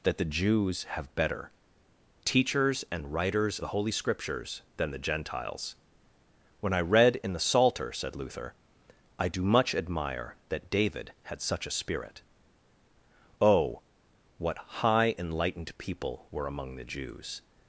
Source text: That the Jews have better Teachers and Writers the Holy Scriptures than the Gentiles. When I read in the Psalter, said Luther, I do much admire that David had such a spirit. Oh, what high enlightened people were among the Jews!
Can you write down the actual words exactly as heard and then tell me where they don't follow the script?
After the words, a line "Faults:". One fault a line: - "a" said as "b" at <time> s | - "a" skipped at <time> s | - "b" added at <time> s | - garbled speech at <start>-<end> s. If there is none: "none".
That the Jews have better Teachers and Writers the Holy Scriptures than the Gentiles. When I read in the Psalter, said Luther, I do much admire that David had such a spirit. Oh, what high enlightened people were among the Jews!
Faults:
none